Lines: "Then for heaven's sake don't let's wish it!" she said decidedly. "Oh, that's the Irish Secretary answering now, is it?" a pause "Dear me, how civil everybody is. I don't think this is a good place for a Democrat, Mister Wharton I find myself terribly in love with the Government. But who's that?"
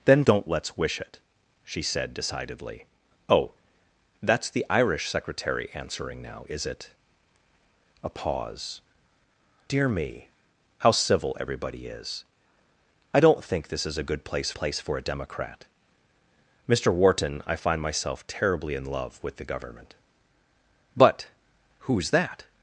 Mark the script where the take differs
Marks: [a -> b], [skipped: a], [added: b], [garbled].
"Then [skipped: for heaven's sake] don't let's wish it!" she said decidedly. "Oh, that's the Irish Secretary answering now, is it?" a pause "Dear me, how civil everybody is. I don't think this is a good place [added: place] for a Democrat, Mister Wharton I find myself terribly in love with the Government. But who's that?"